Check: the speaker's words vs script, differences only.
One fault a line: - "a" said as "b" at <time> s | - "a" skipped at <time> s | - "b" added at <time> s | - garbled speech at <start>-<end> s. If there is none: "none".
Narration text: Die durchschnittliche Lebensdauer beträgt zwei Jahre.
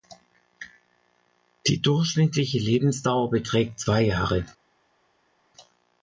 none